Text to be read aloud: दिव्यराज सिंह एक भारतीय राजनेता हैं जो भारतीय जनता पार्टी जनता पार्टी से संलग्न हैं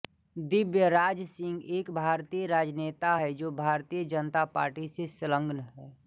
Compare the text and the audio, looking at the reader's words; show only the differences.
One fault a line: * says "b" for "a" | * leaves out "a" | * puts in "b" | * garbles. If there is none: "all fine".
* leaves out "जनता पार्टी"